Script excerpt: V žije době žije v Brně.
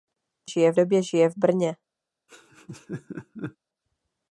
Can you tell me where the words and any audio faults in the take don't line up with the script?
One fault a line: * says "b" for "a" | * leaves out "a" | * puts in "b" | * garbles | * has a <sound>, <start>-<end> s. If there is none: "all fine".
* has a laugh, 2.3-3.6 s